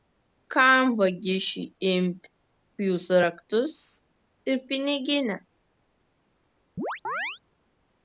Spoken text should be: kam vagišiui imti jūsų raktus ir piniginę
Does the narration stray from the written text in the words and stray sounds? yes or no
yes